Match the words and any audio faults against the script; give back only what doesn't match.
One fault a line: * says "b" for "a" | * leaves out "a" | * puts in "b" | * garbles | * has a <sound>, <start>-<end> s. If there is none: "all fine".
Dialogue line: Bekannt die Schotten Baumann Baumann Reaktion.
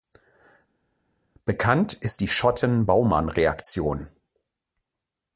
* puts in "ist"
* leaves out "Baumann"